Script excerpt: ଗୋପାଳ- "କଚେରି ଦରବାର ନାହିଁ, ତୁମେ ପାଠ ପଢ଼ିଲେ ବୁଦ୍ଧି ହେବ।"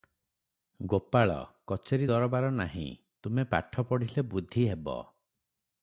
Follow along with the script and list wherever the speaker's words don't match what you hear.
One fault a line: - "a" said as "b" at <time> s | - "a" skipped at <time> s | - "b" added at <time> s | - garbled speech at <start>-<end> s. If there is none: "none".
none